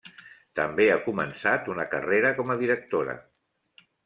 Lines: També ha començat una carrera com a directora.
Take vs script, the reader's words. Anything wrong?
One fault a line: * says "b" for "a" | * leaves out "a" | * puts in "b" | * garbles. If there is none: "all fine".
all fine